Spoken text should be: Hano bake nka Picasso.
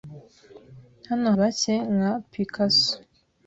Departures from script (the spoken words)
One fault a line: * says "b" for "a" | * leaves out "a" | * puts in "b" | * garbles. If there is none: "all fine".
all fine